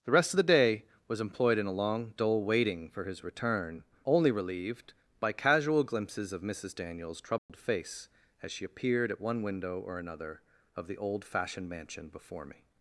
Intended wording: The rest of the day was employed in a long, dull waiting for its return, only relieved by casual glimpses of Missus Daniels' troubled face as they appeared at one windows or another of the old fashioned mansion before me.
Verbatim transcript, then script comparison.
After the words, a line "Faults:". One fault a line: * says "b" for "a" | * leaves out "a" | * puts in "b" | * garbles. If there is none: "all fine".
The rest of the day was employed in a long, dull waiting for his return, only relieved by casual glimpses of Missus Daniels' troubled face as she appeared at one window or another of the old fashioned mansion before me.
Faults:
* says "his" for "its"
* says "she" for "they"
* says "window" for "windows"